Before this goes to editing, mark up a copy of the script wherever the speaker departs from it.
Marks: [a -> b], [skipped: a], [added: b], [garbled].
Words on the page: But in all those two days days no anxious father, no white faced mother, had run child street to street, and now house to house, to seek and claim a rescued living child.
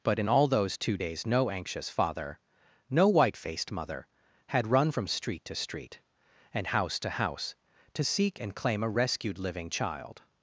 But in all those two days [skipped: days] no anxious father, no white faced mother, had run [child -> from] street to street, and [skipped: now] house to house, to seek and claim a rescued living child.